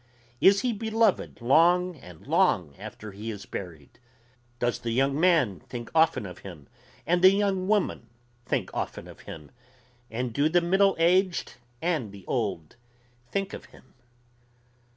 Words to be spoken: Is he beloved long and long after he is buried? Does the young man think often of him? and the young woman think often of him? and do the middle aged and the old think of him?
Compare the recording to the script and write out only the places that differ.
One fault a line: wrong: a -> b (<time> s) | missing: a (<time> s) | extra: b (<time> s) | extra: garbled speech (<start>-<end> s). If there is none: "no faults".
no faults